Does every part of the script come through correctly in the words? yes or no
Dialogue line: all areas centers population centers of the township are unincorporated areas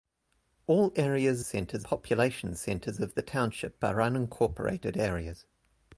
yes